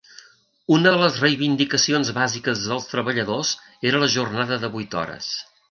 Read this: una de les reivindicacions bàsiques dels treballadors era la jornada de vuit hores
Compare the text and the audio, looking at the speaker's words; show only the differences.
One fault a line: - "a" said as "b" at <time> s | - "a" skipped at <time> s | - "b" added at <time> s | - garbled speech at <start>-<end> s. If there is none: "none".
none